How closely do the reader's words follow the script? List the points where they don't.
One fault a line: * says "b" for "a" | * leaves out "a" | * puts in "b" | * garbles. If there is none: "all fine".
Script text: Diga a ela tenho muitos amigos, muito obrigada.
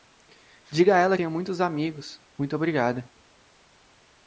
all fine